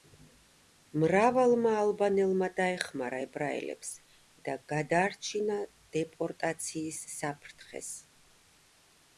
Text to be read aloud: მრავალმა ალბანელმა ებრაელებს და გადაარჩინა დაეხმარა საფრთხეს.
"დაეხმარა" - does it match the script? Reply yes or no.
no